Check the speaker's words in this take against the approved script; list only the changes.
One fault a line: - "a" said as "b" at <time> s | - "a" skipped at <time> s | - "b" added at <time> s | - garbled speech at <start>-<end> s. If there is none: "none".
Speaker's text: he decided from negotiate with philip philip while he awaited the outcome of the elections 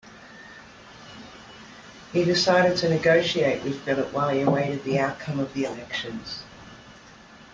- "from" said as "to" at 2.8 s
- "philip" skipped at 4.1 s